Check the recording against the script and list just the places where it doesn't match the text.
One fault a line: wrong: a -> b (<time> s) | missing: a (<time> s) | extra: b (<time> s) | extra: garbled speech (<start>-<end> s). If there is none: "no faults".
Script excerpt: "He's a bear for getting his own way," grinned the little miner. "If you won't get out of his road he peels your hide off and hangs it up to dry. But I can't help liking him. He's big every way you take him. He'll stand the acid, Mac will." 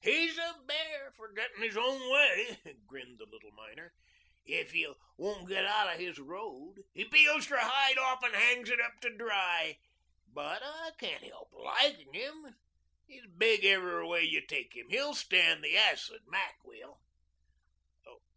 no faults